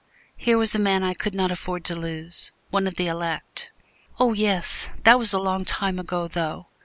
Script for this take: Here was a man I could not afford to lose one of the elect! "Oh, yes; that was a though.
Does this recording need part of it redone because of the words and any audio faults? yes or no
yes